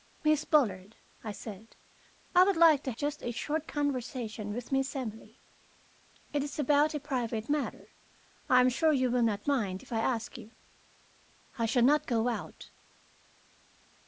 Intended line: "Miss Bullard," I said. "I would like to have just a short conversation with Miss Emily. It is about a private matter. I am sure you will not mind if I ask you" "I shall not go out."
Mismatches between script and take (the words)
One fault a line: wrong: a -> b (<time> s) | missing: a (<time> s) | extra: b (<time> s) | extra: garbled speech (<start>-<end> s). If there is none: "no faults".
missing: have (2.9 s)